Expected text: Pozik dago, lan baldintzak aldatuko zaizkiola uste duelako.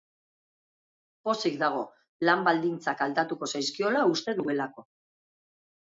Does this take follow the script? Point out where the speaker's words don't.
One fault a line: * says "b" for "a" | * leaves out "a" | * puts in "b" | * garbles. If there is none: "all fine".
all fine